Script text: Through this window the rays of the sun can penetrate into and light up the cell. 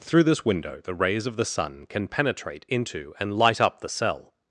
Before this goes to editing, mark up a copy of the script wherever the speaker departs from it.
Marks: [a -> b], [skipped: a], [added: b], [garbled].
Through this window the rays of the sun can penetrate into and light up the cell.